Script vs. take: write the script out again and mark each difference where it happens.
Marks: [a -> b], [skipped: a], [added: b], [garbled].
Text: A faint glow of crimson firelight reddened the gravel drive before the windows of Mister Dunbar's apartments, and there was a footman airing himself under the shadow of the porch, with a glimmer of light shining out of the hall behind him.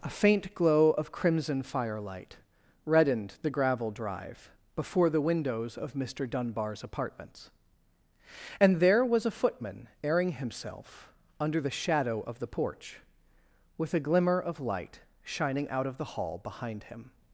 A faint glow of crimson firelight reddened the gravel drive before the windows of Mister Dunbar's apartments, and there was a footman airing himself under the shadow of the porch, with a glimmer of light shining out of the hall behind him.